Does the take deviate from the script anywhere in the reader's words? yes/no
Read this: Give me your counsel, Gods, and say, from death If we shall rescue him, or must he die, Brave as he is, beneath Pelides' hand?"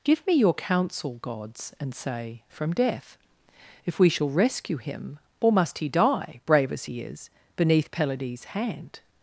no